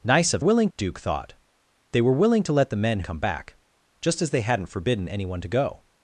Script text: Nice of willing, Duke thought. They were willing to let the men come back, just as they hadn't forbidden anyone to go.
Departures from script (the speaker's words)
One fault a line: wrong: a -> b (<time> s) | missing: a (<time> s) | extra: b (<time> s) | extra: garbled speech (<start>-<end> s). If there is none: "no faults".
no faults